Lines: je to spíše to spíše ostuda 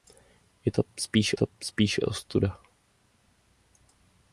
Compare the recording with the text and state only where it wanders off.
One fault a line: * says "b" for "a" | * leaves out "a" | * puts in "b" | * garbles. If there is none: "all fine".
all fine